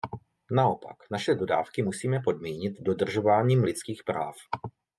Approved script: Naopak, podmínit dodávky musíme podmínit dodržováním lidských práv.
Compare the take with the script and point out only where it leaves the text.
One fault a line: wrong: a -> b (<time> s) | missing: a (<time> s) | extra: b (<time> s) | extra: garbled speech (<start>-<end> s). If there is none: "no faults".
wrong: podmínit -> naše (1.1 s)